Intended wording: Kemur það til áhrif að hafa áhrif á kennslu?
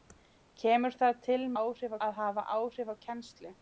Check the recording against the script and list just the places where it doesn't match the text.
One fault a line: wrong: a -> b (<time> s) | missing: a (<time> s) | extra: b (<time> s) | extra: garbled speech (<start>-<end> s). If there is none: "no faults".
no faults